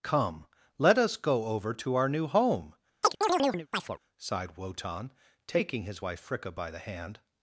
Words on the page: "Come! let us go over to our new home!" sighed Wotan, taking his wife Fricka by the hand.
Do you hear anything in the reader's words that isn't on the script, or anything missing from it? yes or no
no